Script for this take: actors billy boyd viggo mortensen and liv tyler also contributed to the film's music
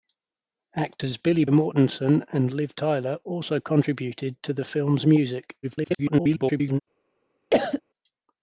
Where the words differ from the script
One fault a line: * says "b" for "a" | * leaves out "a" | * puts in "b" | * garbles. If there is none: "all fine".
* leaves out "boyd viggo"
* garbles